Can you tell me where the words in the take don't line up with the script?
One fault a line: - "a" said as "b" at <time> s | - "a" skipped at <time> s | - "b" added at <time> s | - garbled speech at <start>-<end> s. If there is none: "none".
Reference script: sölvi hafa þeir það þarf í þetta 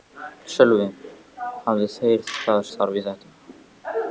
none